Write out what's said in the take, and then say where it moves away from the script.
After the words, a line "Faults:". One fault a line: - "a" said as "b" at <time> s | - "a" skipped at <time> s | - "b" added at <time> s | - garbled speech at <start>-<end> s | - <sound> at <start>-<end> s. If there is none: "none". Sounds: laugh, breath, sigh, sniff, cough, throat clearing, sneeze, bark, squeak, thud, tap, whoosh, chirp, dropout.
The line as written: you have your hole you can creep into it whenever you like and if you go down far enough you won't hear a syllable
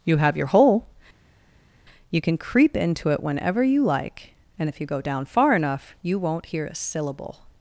you have your hole you can creep into it whenever you like and if you go down far enough you won't hear a syllable
Faults:
none